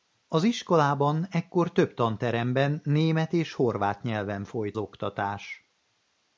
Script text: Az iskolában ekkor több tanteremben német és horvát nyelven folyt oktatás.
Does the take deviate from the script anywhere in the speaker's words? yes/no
no